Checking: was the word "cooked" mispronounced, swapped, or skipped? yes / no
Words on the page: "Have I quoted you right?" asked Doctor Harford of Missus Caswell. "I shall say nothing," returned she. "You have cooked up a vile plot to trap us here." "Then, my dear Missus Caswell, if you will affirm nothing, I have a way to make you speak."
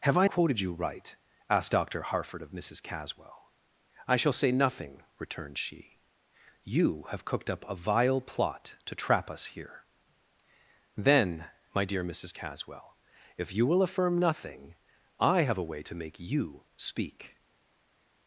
no